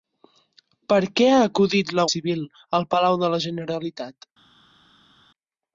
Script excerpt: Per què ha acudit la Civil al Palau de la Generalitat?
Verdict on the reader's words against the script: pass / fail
pass